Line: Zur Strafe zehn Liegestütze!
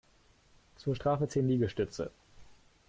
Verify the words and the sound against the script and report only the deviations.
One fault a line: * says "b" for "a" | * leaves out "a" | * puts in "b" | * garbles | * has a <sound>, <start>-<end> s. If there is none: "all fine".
all fine